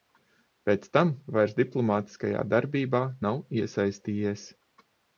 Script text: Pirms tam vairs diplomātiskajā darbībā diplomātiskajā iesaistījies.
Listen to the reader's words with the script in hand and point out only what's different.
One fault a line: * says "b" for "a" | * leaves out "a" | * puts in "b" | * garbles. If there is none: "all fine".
* says "Pēc" for "Pirms"
* says "nav" for "diplomātiskajā"